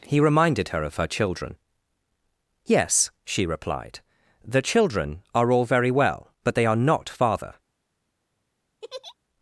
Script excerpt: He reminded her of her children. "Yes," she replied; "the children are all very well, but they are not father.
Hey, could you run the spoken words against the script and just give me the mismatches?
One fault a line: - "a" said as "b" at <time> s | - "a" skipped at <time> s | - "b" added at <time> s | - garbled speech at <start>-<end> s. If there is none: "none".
none